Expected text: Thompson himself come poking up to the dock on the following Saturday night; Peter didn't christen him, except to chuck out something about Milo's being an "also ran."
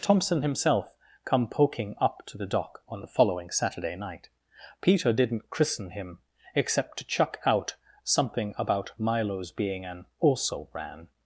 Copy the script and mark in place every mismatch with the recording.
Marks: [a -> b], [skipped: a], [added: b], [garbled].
Thompson himself come poking up to the dock on the following Saturday night; Peter didn't christen him, except to chuck out something about Milo's being an "also ran."